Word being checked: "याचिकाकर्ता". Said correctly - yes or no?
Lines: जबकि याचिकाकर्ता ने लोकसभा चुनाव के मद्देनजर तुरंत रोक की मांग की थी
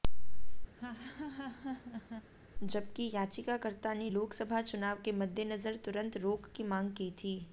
yes